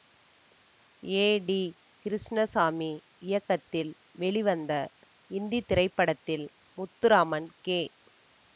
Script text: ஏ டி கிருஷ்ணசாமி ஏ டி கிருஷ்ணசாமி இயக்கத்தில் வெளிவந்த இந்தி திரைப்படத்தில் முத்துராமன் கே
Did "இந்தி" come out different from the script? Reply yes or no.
no